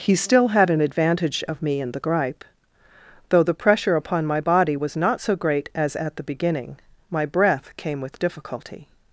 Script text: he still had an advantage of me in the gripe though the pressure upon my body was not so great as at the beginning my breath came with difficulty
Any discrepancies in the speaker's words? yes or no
no